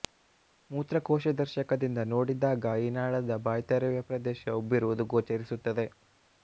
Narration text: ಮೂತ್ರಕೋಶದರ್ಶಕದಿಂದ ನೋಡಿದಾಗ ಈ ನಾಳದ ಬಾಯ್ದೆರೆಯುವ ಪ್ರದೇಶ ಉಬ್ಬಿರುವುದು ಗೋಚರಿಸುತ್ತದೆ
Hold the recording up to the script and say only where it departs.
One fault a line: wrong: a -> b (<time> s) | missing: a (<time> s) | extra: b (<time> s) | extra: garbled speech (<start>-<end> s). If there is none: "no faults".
no faults